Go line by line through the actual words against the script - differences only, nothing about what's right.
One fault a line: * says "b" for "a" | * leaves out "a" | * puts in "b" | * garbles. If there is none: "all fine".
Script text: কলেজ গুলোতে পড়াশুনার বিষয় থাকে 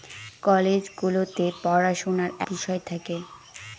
all fine